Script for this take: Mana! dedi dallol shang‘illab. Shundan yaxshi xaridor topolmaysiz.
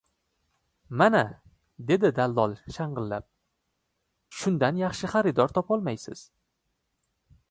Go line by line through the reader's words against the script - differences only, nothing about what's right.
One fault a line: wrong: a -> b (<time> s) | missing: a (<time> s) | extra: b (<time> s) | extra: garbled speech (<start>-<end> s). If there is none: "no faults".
no faults